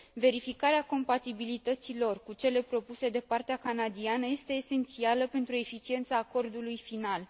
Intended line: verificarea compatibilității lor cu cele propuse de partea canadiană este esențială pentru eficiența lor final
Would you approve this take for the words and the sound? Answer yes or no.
no